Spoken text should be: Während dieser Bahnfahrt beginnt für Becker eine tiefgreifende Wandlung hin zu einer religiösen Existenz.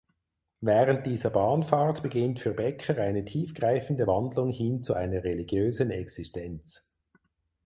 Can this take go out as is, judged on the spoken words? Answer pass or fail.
pass